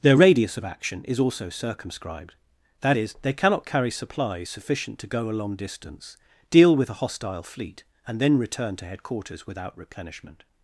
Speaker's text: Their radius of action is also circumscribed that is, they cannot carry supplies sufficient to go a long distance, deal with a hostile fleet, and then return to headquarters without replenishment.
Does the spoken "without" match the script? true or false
true